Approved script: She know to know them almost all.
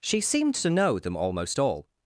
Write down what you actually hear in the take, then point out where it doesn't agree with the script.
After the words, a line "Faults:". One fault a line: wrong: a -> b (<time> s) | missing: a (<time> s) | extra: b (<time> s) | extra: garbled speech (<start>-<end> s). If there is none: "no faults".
She seemed to know them almost all.
Faults:
wrong: know -> seemed (0.2 s)